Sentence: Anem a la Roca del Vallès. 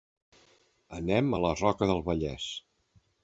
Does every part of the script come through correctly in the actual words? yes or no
yes